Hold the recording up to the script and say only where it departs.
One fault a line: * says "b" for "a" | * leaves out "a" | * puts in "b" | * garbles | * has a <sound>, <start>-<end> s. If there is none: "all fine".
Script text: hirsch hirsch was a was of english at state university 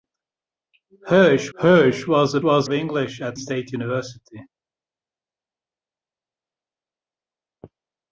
all fine